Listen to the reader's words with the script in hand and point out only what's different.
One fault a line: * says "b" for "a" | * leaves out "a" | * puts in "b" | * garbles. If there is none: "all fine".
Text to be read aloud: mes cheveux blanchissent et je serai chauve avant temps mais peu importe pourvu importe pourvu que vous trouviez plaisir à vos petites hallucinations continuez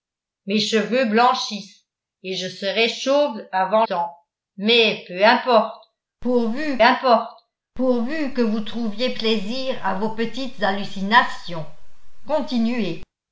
all fine